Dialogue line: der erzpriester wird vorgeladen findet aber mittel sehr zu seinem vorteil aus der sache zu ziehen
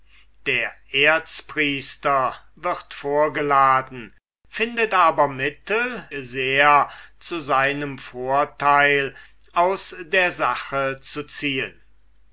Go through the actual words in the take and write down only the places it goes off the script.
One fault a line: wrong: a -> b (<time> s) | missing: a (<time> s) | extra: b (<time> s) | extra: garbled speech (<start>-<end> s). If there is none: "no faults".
no faults